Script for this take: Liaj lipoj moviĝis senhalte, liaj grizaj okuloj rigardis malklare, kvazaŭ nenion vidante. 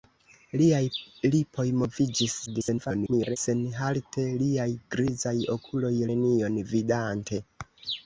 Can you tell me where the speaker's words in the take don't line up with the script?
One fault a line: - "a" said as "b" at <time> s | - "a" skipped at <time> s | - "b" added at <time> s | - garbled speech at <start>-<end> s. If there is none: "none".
- garbled speech at 2.5-3.4 s
- "rigardis malklare kvazaŭ" skipped at 5.9 s